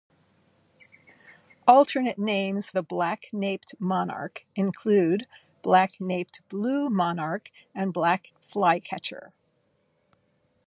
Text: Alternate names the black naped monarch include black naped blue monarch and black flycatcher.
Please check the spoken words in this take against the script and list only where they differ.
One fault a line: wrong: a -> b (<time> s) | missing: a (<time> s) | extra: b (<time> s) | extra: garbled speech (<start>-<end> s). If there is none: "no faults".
no faults